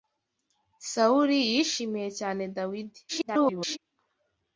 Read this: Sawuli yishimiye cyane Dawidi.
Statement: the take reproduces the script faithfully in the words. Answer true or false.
false